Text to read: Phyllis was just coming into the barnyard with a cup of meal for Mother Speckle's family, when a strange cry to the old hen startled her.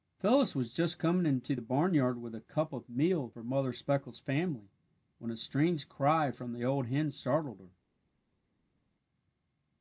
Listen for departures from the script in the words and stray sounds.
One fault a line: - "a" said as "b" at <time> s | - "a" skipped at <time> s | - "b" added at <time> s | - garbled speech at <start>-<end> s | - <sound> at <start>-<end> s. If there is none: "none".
- "to" said as "from" at 6.3 s